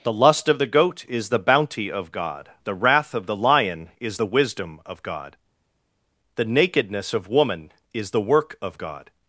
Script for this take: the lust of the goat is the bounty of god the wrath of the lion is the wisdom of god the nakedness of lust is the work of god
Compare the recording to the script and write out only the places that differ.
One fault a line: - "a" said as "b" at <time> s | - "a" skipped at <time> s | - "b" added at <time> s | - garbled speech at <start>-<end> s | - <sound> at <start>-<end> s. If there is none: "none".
- "lust" said as "woman" at 7.3 s